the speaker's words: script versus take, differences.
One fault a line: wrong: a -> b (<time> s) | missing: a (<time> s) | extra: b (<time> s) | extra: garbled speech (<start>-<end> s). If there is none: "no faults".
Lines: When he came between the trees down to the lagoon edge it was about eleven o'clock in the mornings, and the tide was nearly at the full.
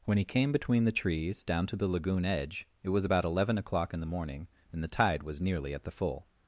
wrong: mornings -> morning (4.0 s)